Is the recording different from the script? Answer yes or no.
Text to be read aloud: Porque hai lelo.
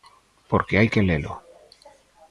yes